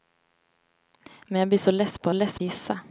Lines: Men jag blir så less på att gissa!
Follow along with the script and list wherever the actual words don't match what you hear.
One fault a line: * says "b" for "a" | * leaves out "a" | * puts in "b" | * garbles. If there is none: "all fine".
* says "less" for "att"